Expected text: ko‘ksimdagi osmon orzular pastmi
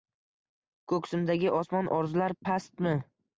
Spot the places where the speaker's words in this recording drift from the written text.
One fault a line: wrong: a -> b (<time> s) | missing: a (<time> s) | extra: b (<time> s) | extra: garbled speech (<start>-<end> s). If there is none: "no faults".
no faults